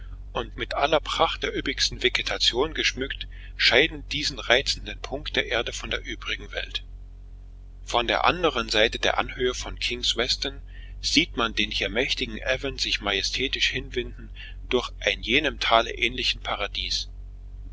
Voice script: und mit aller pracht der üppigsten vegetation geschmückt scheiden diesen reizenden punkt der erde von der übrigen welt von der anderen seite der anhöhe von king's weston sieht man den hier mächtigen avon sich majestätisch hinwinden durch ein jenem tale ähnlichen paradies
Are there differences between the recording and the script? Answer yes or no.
no